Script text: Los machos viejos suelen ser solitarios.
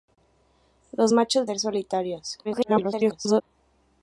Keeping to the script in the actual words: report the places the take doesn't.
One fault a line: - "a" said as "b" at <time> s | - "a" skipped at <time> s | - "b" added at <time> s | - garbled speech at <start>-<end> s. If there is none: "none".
- "viejos suelen" skipped at 1.5 s
- garbled speech at 2.4-3.4 s